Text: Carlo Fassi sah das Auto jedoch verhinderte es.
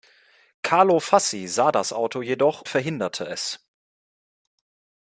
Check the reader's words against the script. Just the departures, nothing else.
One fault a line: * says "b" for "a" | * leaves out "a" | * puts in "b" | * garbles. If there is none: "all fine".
all fine